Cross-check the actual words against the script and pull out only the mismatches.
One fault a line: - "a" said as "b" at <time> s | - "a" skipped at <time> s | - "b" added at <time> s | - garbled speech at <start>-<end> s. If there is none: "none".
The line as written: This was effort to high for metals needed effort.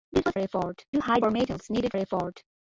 none